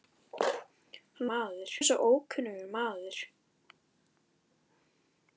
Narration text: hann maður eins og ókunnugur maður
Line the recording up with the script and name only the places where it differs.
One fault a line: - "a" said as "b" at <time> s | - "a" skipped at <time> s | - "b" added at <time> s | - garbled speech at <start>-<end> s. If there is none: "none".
none